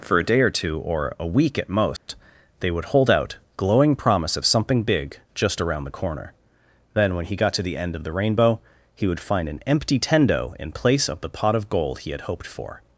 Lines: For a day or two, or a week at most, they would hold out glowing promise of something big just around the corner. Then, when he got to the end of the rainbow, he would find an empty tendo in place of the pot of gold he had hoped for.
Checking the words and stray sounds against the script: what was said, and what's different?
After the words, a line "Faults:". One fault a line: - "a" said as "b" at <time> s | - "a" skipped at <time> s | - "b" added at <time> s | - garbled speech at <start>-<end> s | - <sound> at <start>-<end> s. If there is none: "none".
For a day or two, or a week at most, they would hold out glowing promise of something big just around the corner. Then, when he got to the end of the rainbow, he would find an empty tendo in place of the pot of gold he had hoped for.
Faults:
- dropout at 2.0-2.1 s